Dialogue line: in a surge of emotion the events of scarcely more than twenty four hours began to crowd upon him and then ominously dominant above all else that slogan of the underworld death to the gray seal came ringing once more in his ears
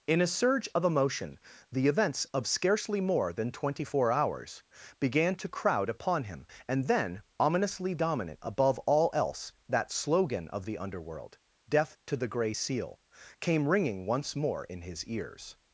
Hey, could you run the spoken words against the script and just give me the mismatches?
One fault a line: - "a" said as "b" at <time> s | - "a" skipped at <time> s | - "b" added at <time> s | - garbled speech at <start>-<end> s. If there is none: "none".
none